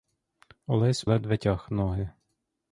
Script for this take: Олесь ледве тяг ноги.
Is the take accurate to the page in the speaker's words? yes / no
yes